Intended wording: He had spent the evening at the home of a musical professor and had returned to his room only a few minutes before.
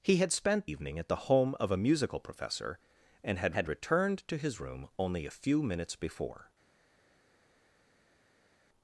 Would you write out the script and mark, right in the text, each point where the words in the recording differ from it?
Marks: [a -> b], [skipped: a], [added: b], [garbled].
He had spent [skipped: the] evening at the home of a musical professor and had [added: had] returned to his room only a few minutes before.